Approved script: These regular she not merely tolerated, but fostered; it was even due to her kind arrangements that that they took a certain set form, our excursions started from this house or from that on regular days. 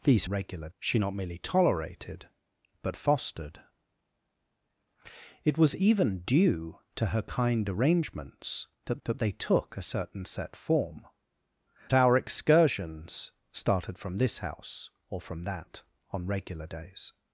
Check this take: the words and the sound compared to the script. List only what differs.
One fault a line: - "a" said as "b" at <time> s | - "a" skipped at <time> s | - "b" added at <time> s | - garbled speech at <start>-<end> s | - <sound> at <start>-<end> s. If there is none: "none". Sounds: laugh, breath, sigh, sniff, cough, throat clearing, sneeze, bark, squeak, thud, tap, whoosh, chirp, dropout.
none